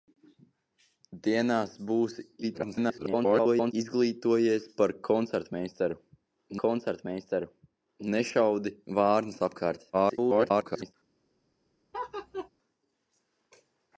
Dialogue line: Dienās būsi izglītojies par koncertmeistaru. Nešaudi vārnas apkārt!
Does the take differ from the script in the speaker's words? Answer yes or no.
yes